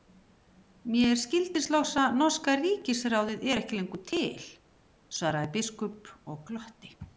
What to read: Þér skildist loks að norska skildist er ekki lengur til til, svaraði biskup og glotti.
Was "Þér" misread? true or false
true